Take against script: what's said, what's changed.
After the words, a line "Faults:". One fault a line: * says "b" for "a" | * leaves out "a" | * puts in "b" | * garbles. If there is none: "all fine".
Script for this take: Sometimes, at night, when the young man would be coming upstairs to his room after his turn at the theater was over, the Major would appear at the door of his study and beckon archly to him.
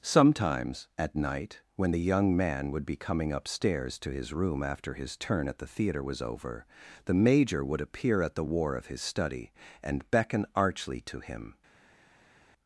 Sometimes, at night, when the young man would be coming upstairs to his room after his turn at the theater was over, the Major would appear at the war of his study and beckon archly to him.
Faults:
* says "war" for "door"